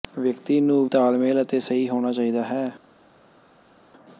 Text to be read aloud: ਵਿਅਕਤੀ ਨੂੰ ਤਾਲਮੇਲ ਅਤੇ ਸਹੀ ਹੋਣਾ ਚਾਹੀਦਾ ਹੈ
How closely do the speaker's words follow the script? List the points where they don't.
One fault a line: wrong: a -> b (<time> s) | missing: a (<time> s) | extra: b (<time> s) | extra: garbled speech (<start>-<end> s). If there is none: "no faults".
no faults